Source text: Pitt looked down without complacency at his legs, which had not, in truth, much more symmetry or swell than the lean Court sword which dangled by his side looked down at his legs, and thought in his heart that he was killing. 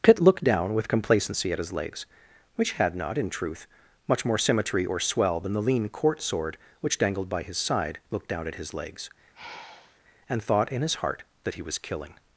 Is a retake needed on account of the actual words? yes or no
yes